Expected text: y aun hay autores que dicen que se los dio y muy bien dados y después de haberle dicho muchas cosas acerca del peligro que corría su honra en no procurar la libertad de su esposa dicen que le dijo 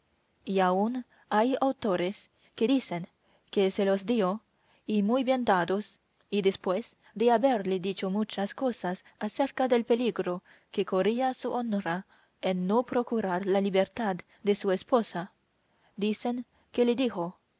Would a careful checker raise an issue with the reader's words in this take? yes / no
no